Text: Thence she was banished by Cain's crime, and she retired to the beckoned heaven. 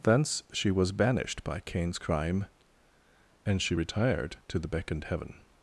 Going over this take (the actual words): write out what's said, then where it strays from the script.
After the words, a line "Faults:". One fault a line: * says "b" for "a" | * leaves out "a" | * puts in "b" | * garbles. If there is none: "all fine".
Thence she was banished by Cain's crime, and she retired to the beckoned heaven.
Faults:
all fine